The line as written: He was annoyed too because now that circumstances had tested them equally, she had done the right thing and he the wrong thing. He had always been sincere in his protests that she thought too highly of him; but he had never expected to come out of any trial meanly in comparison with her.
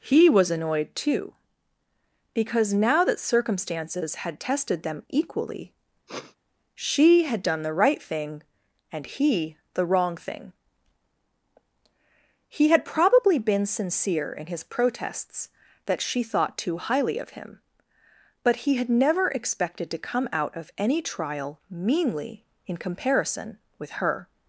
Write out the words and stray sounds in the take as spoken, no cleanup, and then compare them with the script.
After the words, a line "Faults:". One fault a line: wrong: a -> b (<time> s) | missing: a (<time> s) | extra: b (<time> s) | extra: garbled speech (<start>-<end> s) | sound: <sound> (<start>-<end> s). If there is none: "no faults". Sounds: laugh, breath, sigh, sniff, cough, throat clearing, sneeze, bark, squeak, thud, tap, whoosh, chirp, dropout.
He was annoyed too because now that circumstances had tested them equally, she had done the right thing and he the wrong thing. He had probably been sincere in his protests that she thought too highly of him; but he had never expected to come out of any trial meanly in comparison with her.
Faults:
sound: sniff (6.1-6.4 s)
wrong: always -> probably (12.9 s)